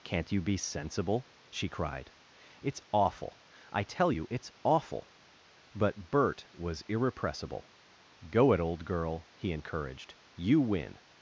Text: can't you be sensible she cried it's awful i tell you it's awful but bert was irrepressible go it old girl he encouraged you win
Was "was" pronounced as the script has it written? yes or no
yes